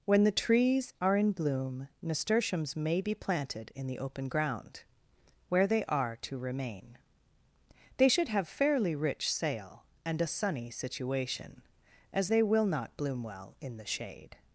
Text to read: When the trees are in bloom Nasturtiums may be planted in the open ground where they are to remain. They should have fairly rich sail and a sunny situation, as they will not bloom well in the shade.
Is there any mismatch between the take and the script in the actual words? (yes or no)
no